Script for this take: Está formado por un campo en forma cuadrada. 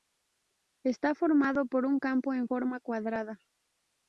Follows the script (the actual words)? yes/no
yes